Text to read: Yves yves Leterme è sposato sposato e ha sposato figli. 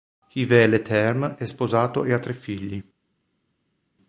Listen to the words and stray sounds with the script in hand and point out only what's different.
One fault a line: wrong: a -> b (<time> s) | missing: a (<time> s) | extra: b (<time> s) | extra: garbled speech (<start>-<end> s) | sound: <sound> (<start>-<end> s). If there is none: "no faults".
missing: yves (0.7 s)
missing: sposato (2.0 s)
wrong: sposato -> tre (2.2 s)